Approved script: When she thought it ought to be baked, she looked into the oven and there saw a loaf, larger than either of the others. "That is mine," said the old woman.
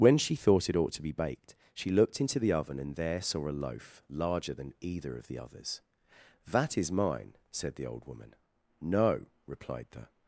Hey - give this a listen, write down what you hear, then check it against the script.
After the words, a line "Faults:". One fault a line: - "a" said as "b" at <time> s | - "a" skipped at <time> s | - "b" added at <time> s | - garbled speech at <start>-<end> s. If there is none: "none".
When she thought it ought to be baked, she looked into the oven and there saw a loaf, larger than either of the others. "That is mine," said the old woman. "No," replied the
Faults:
- "No replied the" added at 8.8 s